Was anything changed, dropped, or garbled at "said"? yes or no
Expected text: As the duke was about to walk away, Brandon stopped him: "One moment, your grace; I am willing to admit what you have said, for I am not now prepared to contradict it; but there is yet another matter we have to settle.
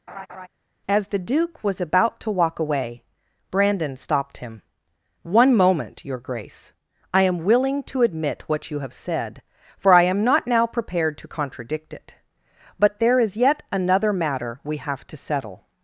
no